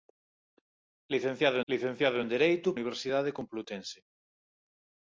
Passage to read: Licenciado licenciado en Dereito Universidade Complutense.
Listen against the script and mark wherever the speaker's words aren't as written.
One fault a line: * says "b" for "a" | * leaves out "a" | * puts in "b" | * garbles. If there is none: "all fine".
all fine